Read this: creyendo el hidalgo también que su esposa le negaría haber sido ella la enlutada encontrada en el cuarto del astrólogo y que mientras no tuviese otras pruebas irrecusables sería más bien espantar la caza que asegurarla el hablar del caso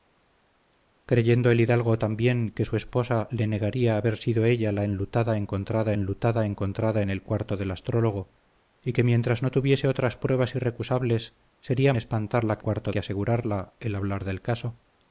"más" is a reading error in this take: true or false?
true